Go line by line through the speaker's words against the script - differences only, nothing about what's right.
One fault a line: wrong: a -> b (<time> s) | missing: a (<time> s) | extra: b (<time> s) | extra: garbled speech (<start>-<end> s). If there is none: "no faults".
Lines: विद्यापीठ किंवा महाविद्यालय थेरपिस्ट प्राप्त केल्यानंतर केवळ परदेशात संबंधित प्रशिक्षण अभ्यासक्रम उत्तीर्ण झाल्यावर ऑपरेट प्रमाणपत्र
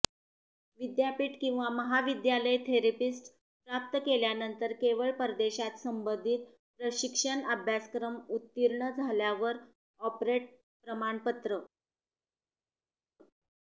no faults